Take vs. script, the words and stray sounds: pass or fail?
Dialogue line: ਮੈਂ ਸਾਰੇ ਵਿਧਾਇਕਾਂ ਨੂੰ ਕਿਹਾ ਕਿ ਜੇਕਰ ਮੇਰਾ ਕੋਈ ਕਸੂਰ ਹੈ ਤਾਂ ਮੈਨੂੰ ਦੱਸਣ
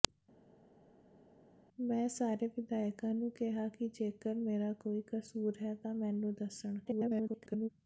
fail